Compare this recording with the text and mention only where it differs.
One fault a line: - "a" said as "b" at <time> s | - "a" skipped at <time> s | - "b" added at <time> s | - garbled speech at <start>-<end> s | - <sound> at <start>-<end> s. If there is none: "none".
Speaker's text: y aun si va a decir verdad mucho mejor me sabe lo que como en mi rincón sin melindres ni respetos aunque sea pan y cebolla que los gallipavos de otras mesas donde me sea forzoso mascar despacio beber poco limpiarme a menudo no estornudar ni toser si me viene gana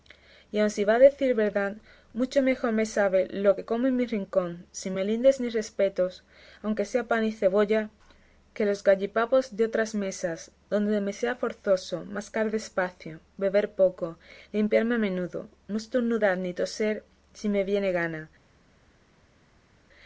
none